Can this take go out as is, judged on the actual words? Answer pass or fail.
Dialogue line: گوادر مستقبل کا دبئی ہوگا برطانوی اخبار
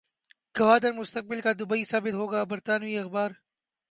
fail